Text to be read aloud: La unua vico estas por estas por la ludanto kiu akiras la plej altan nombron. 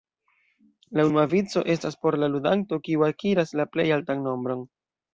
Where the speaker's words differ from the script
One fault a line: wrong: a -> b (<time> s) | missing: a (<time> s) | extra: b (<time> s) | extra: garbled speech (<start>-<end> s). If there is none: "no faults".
missing: estas por (2.2 s)